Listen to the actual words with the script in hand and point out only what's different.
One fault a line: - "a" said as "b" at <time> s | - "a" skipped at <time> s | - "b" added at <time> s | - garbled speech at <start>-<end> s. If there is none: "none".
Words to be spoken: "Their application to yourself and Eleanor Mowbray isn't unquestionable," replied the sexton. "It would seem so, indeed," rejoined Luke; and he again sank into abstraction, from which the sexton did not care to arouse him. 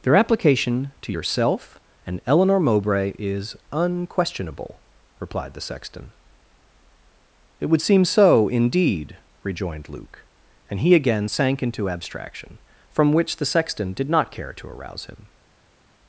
- "isn't" said as "is" at 3.2 s